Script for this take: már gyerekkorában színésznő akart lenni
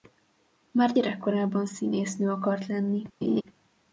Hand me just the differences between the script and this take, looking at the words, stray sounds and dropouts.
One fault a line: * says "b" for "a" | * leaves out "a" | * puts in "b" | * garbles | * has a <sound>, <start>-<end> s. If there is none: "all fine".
* has a laugh, 3.2-3.4 s